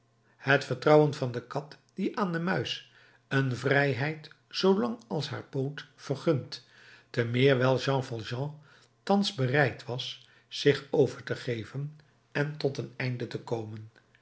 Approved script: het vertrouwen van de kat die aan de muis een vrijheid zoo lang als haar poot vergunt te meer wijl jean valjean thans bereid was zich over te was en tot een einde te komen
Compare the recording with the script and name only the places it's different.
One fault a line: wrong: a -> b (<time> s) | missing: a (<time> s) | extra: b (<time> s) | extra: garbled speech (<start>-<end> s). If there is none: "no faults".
wrong: was -> geven (11.3 s)